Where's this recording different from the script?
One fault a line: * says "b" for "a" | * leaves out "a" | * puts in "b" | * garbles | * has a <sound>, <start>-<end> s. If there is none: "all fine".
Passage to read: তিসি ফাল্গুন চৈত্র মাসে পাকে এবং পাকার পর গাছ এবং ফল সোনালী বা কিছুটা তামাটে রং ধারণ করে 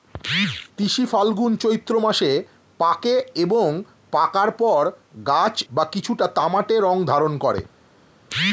* leaves out "এবং ফল সোনালী"